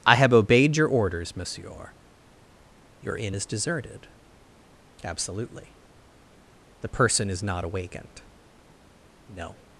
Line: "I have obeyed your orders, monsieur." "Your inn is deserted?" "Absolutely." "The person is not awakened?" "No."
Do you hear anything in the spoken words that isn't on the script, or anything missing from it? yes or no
no